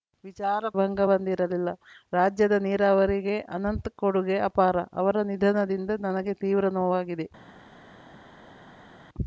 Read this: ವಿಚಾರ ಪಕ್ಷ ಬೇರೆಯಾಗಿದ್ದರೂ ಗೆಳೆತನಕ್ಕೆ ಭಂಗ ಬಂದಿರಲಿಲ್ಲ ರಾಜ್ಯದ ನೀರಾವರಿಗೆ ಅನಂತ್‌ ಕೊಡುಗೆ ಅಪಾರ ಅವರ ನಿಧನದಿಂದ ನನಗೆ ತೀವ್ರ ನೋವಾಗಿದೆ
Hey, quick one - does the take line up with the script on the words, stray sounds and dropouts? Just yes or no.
no